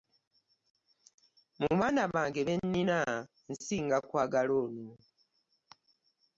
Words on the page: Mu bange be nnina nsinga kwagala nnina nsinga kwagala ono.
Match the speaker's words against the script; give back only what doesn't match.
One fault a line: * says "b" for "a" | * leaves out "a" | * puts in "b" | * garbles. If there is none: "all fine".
* puts in "baana"
* leaves out "nnina nsinga kwagala"